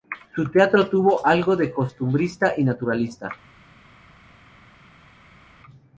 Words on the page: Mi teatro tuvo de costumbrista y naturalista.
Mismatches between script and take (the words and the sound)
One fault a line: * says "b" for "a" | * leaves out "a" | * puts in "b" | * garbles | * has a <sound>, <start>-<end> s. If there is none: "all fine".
* says "Su" for "Mi"
* puts in "algo"